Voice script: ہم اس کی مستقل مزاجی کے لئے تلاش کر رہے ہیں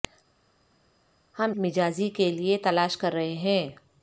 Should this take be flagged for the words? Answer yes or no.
yes